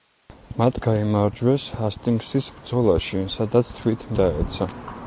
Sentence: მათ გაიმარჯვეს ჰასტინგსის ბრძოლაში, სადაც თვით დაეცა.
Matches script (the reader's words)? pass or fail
pass